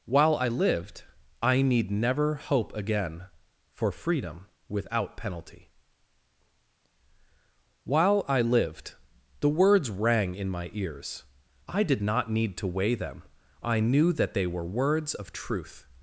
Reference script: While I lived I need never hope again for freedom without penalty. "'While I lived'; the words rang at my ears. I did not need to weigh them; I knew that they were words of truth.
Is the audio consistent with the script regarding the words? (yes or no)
no